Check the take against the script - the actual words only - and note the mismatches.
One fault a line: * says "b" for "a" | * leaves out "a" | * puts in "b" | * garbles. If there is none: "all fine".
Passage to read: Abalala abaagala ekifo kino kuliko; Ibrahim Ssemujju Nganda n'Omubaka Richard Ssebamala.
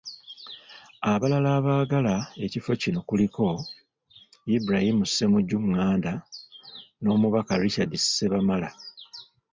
all fine